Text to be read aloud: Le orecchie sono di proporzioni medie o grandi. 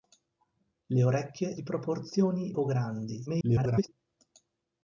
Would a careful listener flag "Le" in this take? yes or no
no